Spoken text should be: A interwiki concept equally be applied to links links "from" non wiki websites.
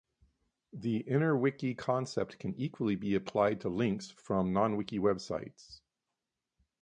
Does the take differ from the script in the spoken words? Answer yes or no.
yes